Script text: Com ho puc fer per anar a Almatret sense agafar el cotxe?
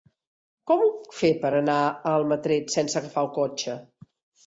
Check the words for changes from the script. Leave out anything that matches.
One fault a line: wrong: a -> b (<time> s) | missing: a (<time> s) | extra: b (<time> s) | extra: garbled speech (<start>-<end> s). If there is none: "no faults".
no faults